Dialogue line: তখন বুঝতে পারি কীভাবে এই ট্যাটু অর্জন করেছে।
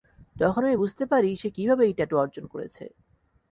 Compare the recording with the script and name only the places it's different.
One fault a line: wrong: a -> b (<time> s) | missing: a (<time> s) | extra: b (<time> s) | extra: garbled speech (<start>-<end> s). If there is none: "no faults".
extra: আমি (0.6 s)
extra: সে (1.4 s)